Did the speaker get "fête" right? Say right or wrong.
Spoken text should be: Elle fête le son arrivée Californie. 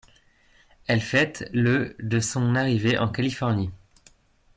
right